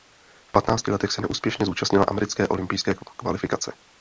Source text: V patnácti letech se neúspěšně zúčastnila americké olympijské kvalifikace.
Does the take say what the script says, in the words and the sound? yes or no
yes